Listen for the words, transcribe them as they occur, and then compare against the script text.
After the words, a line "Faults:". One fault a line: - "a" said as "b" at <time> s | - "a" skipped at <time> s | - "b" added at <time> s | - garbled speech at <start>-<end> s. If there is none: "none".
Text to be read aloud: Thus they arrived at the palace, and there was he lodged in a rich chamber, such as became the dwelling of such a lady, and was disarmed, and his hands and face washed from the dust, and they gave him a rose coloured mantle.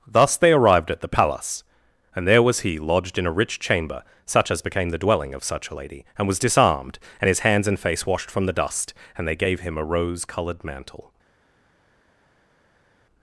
Thus they arrived at the palace, and there was he lodged in a rich chamber, such as became the dwelling of such a lady, and was disarmed, and his hands and face washed from the dust, and they gave him a rose coloured mantle.
Faults:
none